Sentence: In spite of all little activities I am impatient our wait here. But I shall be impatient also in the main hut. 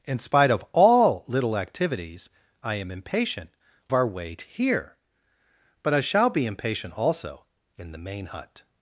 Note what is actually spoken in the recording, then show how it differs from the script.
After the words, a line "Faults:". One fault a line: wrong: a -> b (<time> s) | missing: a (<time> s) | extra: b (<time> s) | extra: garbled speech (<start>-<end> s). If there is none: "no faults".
In spite of all little activities I am impatient our wait here. But I shall be impatient also in the main hut.
Faults:
no faults